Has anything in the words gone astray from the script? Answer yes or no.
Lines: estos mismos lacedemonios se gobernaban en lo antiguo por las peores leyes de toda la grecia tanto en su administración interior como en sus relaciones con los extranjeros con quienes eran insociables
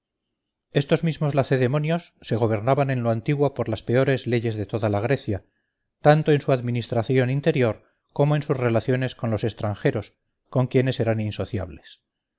no